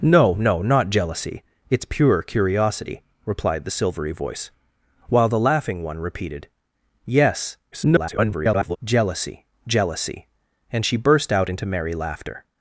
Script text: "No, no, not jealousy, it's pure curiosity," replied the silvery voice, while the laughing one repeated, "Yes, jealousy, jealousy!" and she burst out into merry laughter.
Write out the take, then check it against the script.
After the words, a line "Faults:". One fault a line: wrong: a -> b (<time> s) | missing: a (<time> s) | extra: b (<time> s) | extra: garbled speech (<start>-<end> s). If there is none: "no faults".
"No, no, not jealousy, it's pure curiosity," replied the silvery voice, while the laughing one repeated, "Yes, [garbled] jealousy, jealousy!" and she burst out into merry laughter.
Faults:
extra: garbled speech (7.7-8.8 s)